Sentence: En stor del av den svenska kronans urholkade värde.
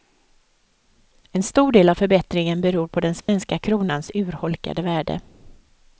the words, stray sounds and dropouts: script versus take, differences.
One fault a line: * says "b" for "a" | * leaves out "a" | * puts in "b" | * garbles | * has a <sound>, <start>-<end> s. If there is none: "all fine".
* puts in "förbättringen beror på"
* has a dropout, 3.2-3.3 s